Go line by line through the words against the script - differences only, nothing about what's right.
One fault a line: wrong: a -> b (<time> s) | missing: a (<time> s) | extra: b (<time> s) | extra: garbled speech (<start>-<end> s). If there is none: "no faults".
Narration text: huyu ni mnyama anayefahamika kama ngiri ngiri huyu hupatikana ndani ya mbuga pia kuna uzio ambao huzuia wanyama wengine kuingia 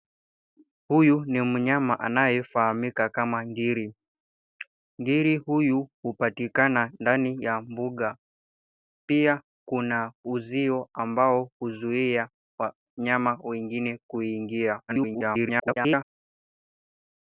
extra: garbled speech (14.9-16.1 s)